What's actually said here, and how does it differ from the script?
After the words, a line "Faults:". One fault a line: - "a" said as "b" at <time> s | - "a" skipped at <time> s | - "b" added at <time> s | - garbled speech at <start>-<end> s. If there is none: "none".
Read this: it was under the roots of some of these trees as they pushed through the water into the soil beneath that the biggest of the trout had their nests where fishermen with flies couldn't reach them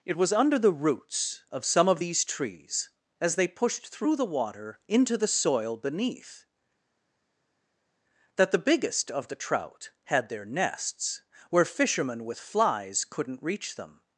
it was under the roots of some of these trees as they pushed through the water into the soil beneath that the biggest of the trout had their nests where fishermen with flies couldn't reach them
Faults:
none